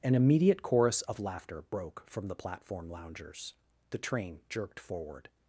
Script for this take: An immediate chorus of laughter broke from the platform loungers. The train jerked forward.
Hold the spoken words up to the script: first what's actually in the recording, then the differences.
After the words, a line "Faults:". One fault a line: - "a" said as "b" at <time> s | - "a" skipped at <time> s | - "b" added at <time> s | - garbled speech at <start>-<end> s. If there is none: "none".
An immediate chorus of laughter broke from the platform loungers. The train jerked forward.
Faults:
none